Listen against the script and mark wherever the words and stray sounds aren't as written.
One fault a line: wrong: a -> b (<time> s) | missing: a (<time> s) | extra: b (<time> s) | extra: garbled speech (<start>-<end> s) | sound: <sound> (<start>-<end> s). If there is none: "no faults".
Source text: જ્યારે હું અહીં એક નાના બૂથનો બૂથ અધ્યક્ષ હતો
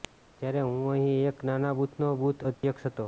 sound: dropout (2.5-2.6 s)